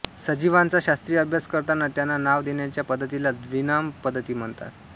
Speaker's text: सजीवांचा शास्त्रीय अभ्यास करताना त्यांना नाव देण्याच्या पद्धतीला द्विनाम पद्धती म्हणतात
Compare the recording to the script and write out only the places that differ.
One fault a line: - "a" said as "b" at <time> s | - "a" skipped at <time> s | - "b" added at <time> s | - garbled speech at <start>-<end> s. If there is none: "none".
none